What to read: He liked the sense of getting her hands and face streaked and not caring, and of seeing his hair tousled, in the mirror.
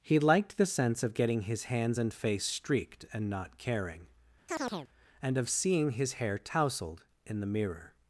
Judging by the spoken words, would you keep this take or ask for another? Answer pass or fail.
fail